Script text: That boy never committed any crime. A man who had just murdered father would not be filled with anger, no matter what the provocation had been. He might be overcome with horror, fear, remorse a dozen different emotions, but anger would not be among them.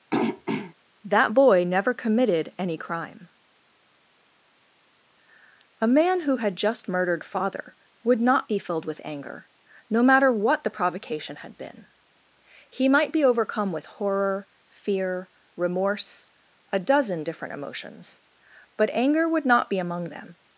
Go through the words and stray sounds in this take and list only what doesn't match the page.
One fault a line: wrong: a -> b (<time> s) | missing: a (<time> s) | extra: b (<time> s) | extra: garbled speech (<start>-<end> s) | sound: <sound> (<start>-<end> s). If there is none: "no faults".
sound: throat clearing (0.1-0.7 s)